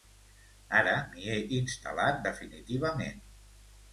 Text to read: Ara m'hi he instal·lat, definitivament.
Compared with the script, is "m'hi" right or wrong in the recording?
right